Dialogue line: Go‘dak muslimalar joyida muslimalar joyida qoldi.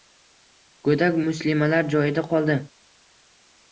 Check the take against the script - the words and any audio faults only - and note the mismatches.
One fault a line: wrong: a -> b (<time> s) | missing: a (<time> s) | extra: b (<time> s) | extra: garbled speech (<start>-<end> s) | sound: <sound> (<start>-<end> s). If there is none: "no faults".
missing: muslimalar joyida (2.3 s)